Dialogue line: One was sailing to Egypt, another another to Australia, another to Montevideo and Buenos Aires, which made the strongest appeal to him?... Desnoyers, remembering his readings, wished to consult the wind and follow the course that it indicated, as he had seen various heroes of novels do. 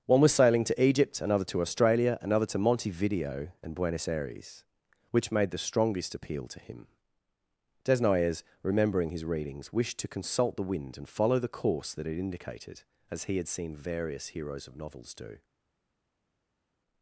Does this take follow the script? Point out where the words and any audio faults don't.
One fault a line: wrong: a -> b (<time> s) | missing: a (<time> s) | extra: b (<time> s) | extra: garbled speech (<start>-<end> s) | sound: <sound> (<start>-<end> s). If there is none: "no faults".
missing: another (1.4 s)